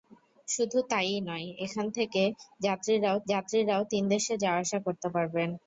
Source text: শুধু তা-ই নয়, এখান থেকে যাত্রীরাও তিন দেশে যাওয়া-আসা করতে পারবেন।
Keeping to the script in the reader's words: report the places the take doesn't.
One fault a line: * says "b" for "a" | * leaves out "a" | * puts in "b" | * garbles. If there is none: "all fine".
* puts in "যাত্রীরাও"